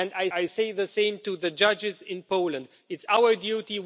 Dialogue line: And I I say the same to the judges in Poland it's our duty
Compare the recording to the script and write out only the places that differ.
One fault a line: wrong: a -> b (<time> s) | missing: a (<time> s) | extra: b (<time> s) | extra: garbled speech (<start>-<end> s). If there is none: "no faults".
no faults